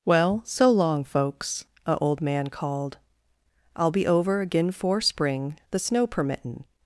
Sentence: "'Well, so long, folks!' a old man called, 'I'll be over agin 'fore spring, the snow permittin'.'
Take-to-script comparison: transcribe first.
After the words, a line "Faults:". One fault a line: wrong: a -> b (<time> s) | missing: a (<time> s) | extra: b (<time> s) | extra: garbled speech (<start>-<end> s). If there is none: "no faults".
"'Well, so long, folks!' a old man called, 'I'll be over agin 'fore spring, the snow permittin'.'
Faults:
no faults